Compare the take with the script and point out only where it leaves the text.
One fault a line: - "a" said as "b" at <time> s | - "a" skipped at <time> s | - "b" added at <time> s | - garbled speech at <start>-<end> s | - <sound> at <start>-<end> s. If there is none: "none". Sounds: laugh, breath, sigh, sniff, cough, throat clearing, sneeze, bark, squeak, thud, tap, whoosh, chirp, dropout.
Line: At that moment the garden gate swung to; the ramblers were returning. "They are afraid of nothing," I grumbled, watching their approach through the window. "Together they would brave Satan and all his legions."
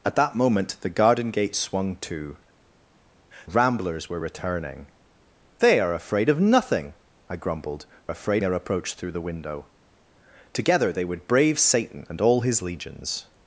- "the" skipped at 2.4 s
- "watching" said as "afraid" at 8.1 s